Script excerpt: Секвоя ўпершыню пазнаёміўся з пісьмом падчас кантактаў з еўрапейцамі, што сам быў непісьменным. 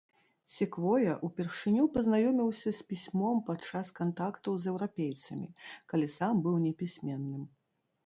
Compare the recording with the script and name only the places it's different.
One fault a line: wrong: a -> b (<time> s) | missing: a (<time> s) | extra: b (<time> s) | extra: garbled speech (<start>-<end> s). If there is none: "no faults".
wrong: што -> калі (5.9 s)